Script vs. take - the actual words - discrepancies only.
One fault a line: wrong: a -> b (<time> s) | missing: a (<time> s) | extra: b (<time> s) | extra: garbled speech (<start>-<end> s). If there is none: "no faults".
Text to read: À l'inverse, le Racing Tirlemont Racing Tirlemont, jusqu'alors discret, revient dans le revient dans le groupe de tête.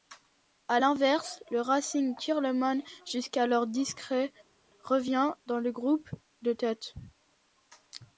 missing: Racing Tirlemont (2.8 s)
missing: revient dans le (5.7 s)